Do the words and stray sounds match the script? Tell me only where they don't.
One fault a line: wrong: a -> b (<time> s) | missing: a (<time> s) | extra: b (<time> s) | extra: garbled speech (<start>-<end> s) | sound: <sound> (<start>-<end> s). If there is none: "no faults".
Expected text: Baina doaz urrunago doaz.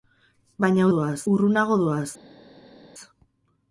no faults